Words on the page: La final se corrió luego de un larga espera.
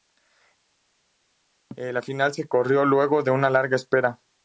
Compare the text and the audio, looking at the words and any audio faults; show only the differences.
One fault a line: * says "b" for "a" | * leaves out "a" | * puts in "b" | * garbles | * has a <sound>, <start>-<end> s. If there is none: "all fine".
* says "una" for "un"